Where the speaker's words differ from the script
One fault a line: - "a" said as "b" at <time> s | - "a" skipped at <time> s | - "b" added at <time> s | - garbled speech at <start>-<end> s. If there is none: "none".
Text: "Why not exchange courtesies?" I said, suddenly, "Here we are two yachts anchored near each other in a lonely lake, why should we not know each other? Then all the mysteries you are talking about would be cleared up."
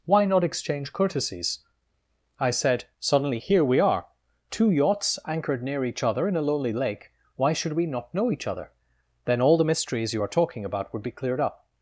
none